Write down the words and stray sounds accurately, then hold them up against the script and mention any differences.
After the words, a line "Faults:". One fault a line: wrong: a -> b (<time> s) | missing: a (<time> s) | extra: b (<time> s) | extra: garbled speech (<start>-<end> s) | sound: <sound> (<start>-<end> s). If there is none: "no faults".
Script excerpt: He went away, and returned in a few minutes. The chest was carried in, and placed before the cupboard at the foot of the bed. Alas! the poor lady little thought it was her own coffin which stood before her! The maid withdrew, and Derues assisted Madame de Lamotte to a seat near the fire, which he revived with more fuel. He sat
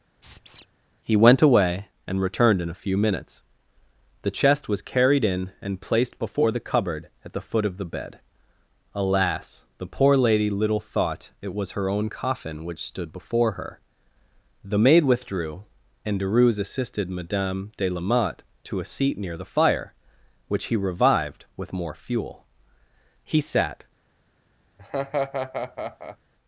He went away, and returned in a few minutes. The chest was carried in, and placed before the cupboard at the foot of the bed. Alas! the poor lady little thought it was her own coffin which stood before her! The maid withdrew, and Derues assisted Madame de Lamotte to a seat near the fire, which he revived with more fuel. He sat
Faults:
sound: squeak (0.2-0.7 s)
sound: laugh (24.8-26.2 s)